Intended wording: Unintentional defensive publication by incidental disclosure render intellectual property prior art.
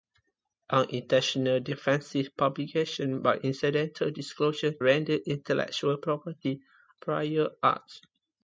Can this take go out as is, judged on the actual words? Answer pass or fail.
pass